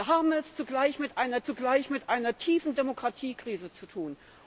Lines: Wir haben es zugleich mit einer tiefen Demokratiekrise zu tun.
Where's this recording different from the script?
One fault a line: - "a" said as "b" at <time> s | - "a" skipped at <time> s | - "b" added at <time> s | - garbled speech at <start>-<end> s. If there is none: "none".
- "zugleich mit einer" added at 1.4 s